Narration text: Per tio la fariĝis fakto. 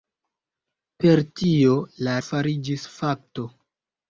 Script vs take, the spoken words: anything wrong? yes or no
no